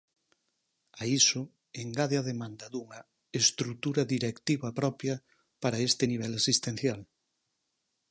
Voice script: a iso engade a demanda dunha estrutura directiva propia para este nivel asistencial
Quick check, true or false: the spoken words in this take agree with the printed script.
true